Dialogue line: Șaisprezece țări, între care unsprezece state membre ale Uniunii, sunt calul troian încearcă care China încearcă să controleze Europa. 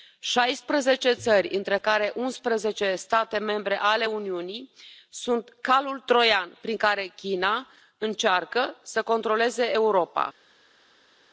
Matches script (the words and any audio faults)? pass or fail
fail